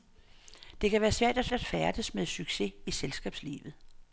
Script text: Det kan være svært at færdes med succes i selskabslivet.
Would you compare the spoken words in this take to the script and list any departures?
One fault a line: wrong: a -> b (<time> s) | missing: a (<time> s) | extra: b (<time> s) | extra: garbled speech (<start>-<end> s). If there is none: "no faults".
extra: at (1.5 s)